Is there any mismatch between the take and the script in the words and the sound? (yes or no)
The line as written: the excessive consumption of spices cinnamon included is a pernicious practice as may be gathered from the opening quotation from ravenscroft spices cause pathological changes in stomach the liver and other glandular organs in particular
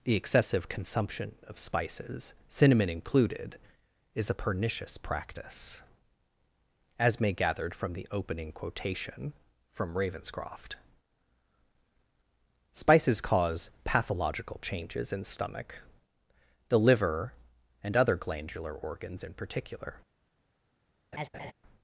yes